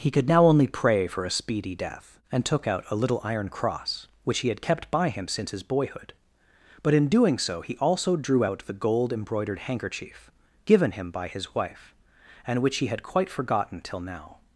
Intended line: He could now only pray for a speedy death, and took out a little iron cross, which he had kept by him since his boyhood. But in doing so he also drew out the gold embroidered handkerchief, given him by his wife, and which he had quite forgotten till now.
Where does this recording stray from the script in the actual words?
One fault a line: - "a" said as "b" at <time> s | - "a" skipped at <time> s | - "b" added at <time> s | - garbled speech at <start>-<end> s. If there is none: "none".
none